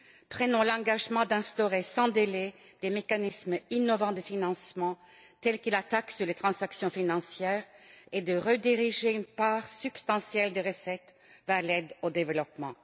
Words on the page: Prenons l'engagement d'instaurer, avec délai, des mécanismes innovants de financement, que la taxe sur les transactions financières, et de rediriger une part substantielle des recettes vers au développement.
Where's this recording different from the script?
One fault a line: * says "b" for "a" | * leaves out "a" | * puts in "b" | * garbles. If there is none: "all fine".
* says "sans" for "avec"
* puts in "tels"
* puts in "l'aide"